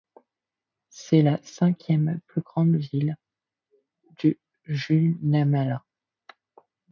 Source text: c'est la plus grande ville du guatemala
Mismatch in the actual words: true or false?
true